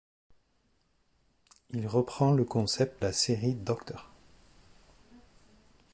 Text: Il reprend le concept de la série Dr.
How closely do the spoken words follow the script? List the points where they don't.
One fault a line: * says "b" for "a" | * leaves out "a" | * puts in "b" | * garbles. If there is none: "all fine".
* leaves out "de"